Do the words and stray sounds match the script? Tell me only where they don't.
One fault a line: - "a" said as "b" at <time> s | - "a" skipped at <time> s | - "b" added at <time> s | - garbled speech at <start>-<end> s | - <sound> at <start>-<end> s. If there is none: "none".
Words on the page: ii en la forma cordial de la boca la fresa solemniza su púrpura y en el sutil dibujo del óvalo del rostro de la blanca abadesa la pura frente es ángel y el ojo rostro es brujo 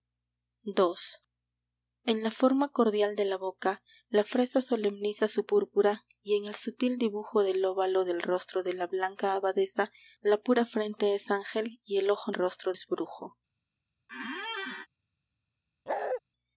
- squeak at 14.1-14.9 s
- bark at 15.9-16.2 s